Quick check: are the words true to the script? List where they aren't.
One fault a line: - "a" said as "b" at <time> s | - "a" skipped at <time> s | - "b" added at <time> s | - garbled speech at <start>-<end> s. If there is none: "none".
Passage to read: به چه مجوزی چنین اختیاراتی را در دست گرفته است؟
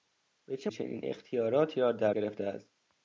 - "مجوزی" skipped at 0.7 s
- "دست" skipped at 2.1 s